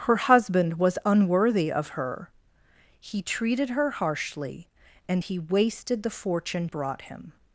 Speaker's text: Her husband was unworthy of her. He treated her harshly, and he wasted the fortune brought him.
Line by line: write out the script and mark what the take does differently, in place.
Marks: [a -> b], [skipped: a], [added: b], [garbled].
Her husband was unworthy of her. He treated her harshly, and he wasted the fortune brought him.